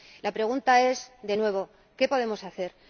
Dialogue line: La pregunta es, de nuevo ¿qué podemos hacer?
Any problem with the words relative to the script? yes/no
no